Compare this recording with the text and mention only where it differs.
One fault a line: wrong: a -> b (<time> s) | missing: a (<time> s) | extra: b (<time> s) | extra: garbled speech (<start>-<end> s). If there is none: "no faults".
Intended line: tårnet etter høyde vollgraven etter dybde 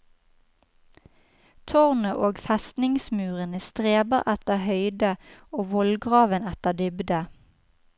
extra: og festningsmurene streber (2.3 s)
extra: og (5.5 s)